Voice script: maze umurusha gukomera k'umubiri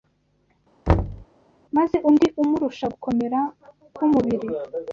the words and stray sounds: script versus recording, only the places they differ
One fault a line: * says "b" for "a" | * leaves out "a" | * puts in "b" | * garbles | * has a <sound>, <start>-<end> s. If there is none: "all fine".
* has a thud, 0.9-1.2 s
* puts in "undi"